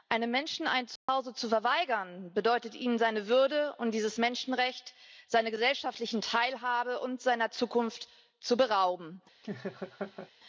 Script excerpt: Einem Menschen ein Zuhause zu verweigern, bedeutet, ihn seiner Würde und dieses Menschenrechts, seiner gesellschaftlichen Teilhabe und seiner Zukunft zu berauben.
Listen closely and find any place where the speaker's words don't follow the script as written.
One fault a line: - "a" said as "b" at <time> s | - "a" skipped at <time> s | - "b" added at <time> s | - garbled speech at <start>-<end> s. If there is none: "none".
none